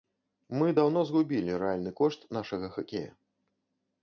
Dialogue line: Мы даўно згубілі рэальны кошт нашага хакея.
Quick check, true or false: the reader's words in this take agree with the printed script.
true